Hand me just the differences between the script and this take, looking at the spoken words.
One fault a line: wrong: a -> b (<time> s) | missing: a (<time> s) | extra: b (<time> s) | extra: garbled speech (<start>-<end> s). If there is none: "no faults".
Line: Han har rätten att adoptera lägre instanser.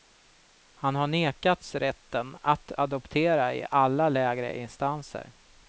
extra: nekats (1.1 s)
extra: i alla (3.5 s)